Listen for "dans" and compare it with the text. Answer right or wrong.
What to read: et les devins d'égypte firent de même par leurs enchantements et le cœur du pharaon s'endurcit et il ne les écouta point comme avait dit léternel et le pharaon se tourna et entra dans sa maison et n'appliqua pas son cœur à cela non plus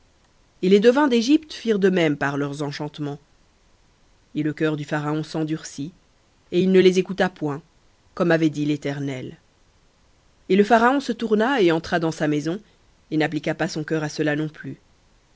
right